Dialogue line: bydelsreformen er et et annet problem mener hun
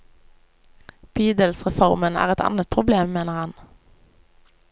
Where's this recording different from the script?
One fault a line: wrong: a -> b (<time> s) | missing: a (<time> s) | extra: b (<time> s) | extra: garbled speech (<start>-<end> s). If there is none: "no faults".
missing: et (2.5 s)
wrong: hun -> han (3.4 s)